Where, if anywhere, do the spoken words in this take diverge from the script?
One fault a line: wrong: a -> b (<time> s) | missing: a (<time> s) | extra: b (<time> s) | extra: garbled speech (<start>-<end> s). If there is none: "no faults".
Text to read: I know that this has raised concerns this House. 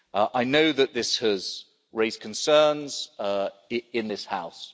extra: in (3.9 s)